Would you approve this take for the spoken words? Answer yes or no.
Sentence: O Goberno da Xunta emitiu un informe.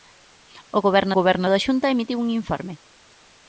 no